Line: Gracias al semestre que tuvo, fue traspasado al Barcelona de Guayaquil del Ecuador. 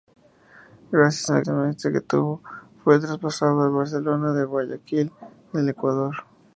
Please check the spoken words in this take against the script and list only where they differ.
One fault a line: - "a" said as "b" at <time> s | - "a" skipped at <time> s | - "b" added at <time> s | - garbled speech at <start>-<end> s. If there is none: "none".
none